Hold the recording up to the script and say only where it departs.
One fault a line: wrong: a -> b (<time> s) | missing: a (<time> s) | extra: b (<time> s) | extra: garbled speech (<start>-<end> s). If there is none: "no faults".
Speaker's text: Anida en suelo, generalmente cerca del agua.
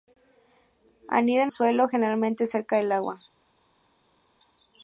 no faults